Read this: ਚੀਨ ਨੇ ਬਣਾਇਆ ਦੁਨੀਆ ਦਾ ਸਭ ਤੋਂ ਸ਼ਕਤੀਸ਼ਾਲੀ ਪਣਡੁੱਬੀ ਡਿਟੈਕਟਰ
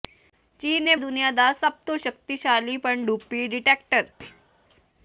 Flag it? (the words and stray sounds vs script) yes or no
yes